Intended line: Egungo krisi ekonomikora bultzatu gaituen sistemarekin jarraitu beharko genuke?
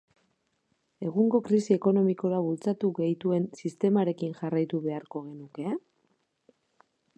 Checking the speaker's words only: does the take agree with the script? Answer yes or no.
yes